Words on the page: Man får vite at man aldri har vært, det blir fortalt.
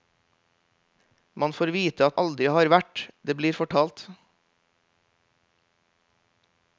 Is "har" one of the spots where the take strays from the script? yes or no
no